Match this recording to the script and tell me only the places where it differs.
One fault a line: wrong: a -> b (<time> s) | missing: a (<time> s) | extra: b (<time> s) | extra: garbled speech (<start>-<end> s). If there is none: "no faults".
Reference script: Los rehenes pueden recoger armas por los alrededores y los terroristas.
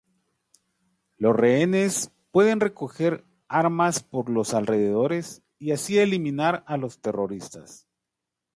extra: así eliminar a (5.7 s)